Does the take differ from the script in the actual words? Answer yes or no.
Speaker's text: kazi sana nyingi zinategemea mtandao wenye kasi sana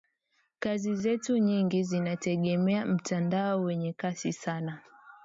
yes